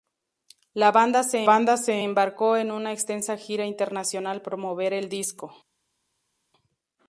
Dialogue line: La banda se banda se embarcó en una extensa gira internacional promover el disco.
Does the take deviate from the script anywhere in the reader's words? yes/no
no